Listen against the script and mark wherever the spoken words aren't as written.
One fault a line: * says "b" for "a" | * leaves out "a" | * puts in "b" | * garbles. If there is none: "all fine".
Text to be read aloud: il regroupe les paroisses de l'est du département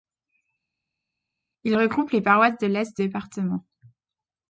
* leaves out "du"